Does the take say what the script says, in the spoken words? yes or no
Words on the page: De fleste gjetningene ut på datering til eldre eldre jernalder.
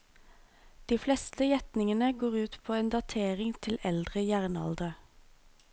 no